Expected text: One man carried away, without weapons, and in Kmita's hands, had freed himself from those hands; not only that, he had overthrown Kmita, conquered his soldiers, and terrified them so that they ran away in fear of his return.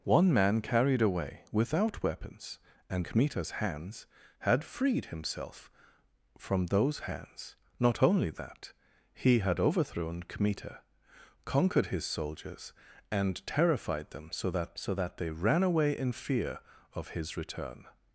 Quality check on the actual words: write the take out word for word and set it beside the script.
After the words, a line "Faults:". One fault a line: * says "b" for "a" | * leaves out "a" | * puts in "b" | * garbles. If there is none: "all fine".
One man carried away, without weapons, and Kmita's hands, had freed himself from those hands; not only that, he had overthrown Kmita, conquered his soldiers, and terrified them so that so that they ran away in fear of his return.
Faults:
* leaves out "in"
* puts in "so that"